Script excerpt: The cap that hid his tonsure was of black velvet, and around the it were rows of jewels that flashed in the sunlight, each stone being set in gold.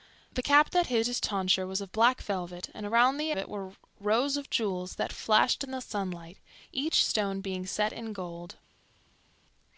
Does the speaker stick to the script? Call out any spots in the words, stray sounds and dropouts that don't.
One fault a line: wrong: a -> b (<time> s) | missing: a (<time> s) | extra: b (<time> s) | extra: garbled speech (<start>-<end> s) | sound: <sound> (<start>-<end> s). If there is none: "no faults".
no faults